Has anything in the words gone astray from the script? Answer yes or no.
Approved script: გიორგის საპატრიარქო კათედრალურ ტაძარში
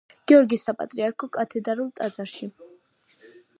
no